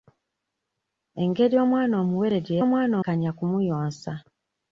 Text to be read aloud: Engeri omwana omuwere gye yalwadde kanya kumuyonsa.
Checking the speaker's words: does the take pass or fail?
fail